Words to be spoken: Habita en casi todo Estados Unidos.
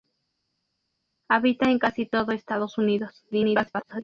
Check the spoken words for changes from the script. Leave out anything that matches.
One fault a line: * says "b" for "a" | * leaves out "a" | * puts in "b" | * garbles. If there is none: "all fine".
* garbles